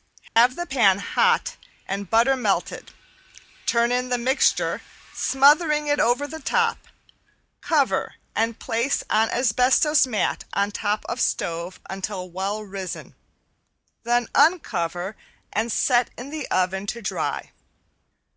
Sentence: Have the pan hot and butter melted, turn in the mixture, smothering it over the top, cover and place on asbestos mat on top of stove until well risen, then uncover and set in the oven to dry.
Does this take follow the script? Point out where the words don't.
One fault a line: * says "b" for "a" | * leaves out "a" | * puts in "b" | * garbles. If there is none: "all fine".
all fine